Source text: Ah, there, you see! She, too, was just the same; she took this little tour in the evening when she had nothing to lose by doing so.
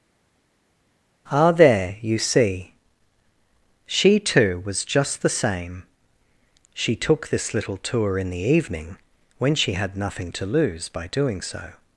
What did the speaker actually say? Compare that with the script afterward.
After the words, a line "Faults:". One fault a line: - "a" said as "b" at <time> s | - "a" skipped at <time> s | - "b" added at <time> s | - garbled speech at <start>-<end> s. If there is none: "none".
Ah, there, you see! She, too, was just the same; she took this little tour in the evening when she had nothing to lose by doing so.
Faults:
none